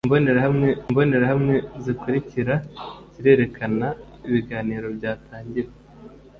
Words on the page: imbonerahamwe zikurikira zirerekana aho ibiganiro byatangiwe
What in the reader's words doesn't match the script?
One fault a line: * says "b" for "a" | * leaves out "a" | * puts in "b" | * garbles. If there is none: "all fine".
* puts in "imbonerahamwe"
* leaves out "aho"